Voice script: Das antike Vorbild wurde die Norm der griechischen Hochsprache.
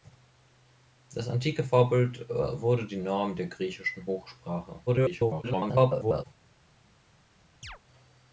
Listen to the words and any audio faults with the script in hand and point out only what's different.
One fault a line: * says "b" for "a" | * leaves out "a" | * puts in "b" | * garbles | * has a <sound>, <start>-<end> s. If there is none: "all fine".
* garbles
* has a chirp, 7.6-7.8 s